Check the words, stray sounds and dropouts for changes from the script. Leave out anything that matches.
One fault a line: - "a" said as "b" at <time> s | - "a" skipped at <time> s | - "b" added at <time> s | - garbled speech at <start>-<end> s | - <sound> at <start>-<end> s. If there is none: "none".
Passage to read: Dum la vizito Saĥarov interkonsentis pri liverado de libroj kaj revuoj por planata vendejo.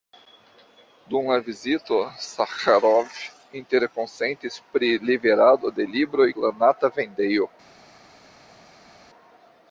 - "kaj revuoj por" skipped at 6.3 s